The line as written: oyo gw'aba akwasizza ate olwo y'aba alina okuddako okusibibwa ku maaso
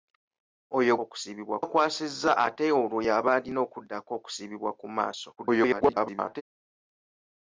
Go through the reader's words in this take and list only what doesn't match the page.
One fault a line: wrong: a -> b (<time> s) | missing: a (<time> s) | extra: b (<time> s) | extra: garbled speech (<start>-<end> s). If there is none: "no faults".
wrong: gw'aba -> okusibibwa (1.0 s)
extra: garbled speech (5.4-6.4 s)